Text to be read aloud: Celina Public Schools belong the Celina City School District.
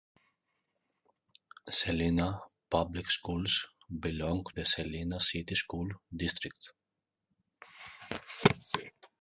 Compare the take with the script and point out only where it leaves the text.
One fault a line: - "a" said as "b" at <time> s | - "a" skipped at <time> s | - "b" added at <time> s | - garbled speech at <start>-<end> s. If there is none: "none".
none